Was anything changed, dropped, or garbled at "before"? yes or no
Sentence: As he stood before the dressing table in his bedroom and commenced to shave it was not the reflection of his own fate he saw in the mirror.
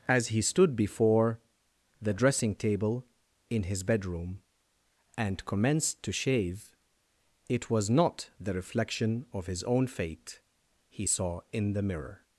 no